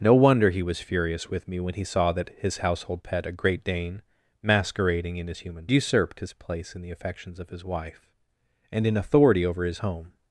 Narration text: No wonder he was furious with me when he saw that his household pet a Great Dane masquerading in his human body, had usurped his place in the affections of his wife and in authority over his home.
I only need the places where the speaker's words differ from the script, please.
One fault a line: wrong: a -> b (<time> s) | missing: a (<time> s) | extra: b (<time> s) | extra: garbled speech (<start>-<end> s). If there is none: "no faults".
missing: body had (5.7 s)